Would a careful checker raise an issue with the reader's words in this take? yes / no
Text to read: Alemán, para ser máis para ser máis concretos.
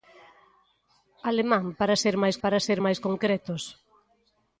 no